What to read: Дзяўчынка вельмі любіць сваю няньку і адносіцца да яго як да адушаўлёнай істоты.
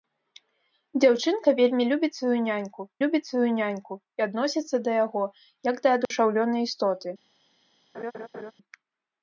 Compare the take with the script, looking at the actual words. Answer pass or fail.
fail